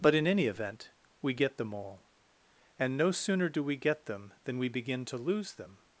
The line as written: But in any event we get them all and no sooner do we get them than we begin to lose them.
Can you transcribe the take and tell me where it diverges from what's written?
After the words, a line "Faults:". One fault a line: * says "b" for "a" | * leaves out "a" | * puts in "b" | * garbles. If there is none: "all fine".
But in any event we get them all and no sooner do we get them than we begin to lose them.
Faults:
all fine